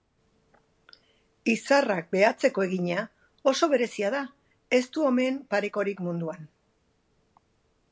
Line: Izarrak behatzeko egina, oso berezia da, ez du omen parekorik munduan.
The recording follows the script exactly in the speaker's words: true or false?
true